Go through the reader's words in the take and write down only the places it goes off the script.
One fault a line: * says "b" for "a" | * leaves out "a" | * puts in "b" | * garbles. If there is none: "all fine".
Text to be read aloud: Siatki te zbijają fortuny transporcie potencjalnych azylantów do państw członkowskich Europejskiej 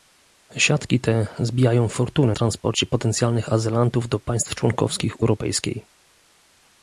all fine